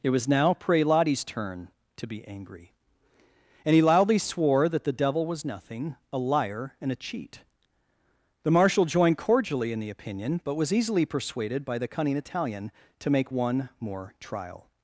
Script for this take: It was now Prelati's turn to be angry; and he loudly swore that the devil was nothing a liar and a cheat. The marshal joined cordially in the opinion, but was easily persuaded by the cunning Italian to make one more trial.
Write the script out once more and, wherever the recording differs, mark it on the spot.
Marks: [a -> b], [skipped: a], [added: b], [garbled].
It was now Prelati's turn to be angry; and he loudly swore that the devil was nothing a liar and a cheat. The marshal joined cordially in the opinion, but was easily persuaded by the cunning Italian to make one more trial.